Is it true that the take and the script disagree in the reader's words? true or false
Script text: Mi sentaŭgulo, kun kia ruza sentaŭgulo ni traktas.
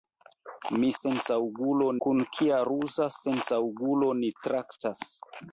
false